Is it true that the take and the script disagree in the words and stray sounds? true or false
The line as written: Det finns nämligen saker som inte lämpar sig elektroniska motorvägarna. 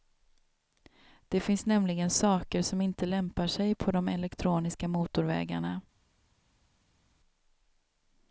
true